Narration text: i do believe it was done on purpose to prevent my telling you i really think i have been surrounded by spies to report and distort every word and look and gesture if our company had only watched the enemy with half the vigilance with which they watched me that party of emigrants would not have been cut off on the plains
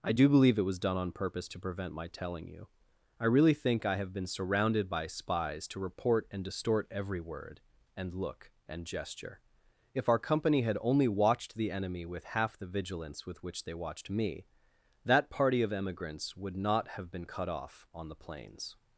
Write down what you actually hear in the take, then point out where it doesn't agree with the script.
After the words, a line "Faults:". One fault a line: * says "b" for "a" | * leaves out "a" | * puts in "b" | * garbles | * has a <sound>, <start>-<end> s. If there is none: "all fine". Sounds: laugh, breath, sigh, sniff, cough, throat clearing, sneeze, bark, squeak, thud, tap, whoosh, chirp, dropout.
i do believe it was done on purpose to prevent my telling you i really think i have been surrounded by spies to report and distort every word and look and gesture if our company had only watched the enemy with half the vigilance with which they watched me that party of emigrants would not have been cut off on the plains
Faults:
all fine